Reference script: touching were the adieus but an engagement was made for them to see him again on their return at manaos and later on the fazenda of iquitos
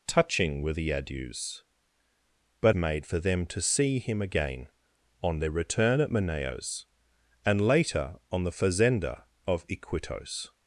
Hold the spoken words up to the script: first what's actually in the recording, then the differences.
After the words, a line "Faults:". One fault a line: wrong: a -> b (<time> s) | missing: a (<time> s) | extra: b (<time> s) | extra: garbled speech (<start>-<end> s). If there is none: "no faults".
touching were the adieus but made for them to see him again on their return at manaos and later on the fazenda of iquitos
Faults:
missing: an engagement was (2.8 s)